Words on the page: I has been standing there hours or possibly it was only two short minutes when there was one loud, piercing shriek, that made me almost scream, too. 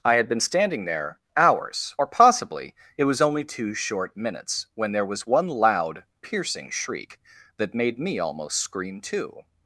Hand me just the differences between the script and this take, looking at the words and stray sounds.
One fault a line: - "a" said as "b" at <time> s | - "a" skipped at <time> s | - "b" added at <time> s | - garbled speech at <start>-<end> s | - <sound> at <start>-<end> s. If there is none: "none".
- "has" said as "had" at 0.1 s